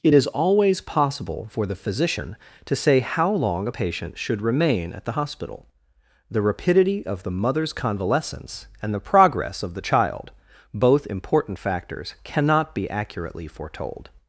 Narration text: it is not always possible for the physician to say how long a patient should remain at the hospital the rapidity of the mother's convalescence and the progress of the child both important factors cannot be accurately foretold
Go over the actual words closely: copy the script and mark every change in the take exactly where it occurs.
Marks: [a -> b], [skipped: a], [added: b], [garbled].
it is [skipped: not] always possible for the physician to say how long a patient should remain at the hospital the rapidity of the mother's convalescence and the progress of the child both important factors cannot be accurately foretold